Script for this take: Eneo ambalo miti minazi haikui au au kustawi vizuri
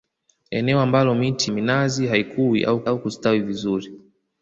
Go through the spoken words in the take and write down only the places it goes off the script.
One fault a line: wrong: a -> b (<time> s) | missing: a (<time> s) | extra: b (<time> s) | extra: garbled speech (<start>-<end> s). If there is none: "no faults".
no faults